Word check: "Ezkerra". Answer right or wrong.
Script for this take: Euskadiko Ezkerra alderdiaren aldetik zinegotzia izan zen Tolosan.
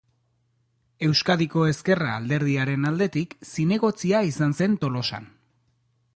right